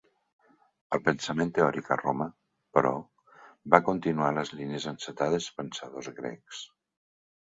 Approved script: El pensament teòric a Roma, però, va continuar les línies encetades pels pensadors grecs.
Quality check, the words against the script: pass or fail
fail